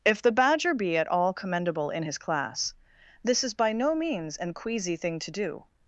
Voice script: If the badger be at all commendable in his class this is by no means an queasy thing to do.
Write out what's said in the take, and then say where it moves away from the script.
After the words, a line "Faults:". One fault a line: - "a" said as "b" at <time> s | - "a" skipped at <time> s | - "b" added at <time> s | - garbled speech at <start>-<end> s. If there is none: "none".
If the badger be at all commendable in his class this is by no means an queasy thing to do.
Faults:
none